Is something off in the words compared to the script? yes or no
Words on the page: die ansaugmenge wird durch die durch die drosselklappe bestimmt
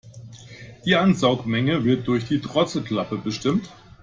yes